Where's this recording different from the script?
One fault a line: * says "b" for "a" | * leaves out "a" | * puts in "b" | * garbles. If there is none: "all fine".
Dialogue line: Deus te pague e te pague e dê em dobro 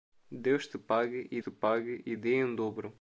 all fine